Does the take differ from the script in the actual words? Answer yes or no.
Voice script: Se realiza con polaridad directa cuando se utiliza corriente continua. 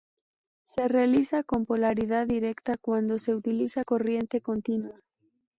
no